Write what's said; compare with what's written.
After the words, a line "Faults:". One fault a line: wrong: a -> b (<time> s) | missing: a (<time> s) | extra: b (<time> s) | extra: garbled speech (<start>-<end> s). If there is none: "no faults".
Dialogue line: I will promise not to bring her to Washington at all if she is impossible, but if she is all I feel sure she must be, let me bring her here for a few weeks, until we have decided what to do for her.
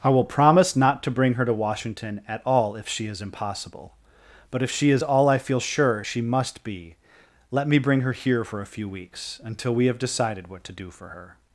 I will promise not to bring her to Washington at all if she is impossible, but if she is all I feel sure she must be, let me bring her here for a few weeks, until we have decided what to do for her.
Faults:
no faults